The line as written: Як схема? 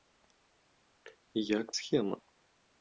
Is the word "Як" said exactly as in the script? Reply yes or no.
yes